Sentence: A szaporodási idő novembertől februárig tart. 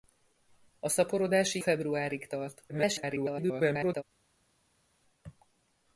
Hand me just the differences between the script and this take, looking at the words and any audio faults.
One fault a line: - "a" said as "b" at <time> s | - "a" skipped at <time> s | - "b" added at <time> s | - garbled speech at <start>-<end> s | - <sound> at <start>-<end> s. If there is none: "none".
- "idő novembertől" skipped at 1.6 s
- garbled speech at 2.7-4.0 s